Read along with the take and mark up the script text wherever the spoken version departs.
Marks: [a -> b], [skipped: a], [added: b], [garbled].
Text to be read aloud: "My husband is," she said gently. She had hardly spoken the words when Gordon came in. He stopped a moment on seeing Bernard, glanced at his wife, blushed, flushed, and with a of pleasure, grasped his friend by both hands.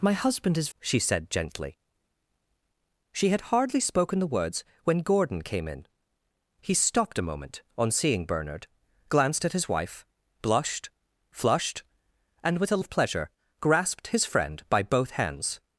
"My husband is," she said gently. She had hardly spoken the words when Gordon came in. He stopped a moment on seeing Bernard, glanced at his wife, blushed, flushed, and with a of pleasure, grasped his friend by both hands.